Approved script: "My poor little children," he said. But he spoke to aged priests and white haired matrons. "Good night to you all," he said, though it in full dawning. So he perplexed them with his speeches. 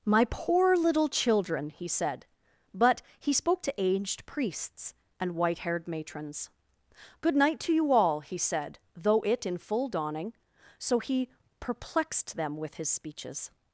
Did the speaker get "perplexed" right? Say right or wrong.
right